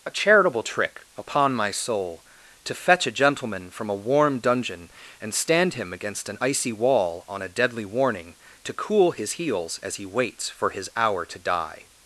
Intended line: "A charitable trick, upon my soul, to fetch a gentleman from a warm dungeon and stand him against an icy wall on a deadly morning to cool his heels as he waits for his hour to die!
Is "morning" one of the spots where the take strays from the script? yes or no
yes